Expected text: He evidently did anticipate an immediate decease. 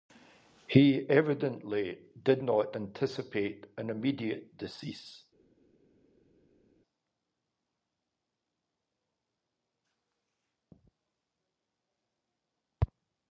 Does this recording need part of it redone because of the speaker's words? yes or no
yes